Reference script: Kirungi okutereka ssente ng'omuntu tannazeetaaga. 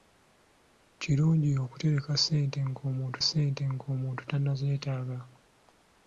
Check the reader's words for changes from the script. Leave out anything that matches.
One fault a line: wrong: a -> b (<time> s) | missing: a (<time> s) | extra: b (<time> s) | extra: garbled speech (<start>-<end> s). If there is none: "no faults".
extra: ssente ng'omuntu (3.2 s)